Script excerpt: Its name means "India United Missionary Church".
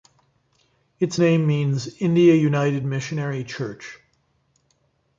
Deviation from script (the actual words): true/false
false